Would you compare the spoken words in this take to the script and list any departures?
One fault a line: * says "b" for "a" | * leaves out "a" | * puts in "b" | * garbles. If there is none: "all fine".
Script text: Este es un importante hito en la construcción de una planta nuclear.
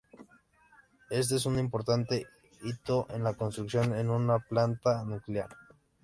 all fine